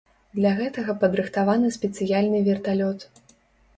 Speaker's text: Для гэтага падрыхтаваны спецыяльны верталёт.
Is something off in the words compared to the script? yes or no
no